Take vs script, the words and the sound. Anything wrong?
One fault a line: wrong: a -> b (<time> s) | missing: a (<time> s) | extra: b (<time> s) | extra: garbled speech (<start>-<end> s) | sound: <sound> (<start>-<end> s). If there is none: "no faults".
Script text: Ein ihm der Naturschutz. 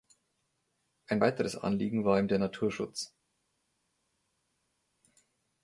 extra: weiteres Anliegen war (1.2 s)